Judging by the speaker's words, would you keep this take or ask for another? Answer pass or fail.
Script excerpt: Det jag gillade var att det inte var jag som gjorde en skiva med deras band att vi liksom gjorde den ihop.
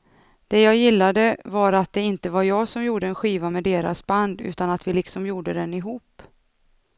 fail